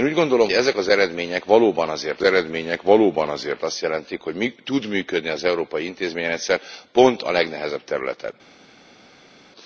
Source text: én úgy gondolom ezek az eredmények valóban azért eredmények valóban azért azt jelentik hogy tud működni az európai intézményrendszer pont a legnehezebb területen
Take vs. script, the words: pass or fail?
pass